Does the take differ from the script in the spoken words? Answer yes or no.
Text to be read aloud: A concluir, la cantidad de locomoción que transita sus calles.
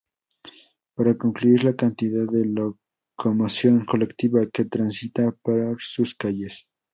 yes